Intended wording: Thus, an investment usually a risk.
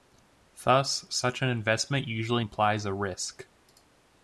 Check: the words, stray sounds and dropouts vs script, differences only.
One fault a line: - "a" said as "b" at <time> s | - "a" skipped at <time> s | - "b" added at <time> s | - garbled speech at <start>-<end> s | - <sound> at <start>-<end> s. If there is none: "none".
- "such" added at 1.1 s
- "implies" added at 2.4 s